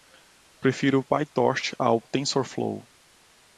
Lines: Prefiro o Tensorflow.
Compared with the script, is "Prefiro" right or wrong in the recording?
right